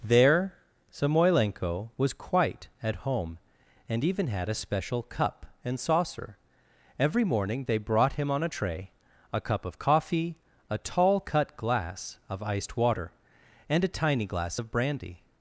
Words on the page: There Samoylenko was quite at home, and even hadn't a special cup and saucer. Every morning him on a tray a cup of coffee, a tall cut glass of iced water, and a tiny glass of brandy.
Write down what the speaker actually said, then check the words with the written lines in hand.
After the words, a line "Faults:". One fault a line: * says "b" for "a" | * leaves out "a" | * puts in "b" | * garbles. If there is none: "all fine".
There Samoylenko was quite at home, and even had a special cup and saucer. Every morning they brought him on a tray a cup of coffee, a tall cut glass of iced water, and a tiny glass of brandy.
Faults:
* says "had" for "hadn't"
* puts in "they brought"